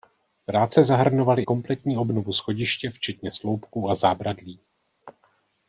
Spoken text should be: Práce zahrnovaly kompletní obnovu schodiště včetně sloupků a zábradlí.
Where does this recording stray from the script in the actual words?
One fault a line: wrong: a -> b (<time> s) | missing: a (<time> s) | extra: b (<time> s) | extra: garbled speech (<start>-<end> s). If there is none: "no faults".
no faults